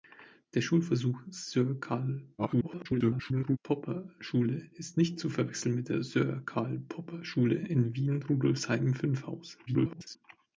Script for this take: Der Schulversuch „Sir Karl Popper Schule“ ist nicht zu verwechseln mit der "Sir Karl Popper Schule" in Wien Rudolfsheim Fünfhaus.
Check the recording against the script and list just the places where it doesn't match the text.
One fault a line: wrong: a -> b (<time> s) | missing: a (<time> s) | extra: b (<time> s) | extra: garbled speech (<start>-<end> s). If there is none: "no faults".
extra: garbled speech (2.4-3.6 s)
extra: garbled speech (9.7-10.2 s)